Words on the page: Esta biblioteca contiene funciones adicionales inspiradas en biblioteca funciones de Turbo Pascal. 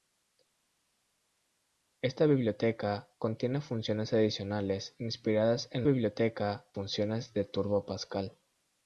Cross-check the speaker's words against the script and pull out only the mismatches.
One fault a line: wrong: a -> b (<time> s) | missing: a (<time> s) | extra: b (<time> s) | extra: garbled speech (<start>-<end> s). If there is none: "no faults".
no faults